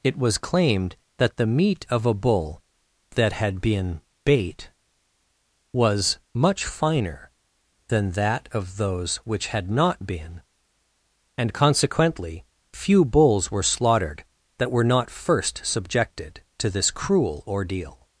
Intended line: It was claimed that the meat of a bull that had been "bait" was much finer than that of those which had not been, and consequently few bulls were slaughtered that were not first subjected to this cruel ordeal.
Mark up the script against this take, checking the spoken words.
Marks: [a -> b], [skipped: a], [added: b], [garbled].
It was claimed that the meat of a bull that had been "bait" was much finer than that of those which had not been, and consequently few bulls were slaughtered that were not first subjected to this cruel ordeal.